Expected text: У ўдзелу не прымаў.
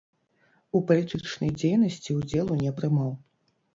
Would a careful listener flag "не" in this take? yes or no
no